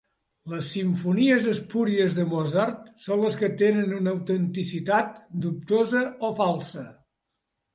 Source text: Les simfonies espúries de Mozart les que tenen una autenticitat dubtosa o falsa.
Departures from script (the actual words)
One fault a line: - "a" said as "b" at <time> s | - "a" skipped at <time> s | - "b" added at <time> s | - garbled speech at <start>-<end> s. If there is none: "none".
- "són" added at 3.0 s